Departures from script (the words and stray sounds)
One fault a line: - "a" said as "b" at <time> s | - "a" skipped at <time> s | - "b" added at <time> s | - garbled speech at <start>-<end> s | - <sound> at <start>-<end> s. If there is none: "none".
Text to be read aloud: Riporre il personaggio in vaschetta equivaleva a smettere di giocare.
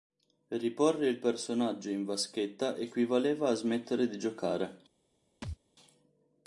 - thud at 5.4-5.6 s